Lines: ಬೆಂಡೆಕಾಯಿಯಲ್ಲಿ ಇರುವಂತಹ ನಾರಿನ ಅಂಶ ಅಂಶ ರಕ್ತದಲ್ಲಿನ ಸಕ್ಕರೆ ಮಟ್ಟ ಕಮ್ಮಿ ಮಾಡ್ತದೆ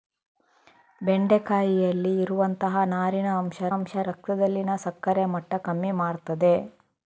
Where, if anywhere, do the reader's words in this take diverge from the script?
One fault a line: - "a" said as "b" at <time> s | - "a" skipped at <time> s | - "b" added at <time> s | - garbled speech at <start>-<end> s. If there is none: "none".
none